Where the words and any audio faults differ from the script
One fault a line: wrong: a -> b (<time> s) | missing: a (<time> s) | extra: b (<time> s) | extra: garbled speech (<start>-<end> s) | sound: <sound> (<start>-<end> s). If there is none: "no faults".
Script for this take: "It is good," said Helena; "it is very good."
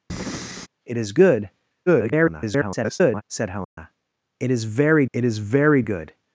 sound: breath (0.1-0.7 s)
extra: garbled speech (1.9-3.2 s)
sound: dropout (3.6-3.8 s)
extra: it is very (5.1 s)